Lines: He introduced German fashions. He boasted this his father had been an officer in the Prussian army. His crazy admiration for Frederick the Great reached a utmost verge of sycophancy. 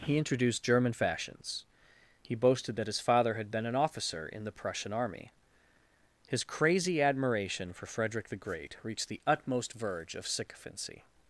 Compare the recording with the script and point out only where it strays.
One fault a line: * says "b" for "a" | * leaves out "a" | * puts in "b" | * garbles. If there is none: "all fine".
* says "that" for "this"
* says "the" for "a"